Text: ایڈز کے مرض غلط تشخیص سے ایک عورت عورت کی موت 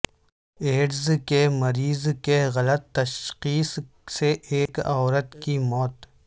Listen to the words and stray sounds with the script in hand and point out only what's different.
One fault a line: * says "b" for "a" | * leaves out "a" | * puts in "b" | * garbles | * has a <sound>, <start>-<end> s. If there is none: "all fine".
* puts in "کی"
* has a dropout, 4.7-4.7 s
* leaves out "عورت"